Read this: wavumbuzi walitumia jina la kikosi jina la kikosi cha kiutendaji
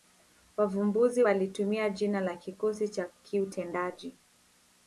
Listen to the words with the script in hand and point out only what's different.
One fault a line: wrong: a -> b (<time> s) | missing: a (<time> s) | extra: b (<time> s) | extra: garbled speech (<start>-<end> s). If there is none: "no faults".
missing: jina la kikosi (2.9 s)